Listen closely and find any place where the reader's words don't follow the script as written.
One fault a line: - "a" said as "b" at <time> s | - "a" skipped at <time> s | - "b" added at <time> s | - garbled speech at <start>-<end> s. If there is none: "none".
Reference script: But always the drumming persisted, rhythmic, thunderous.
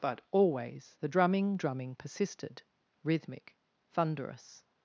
- "drumming" added at 1.6 s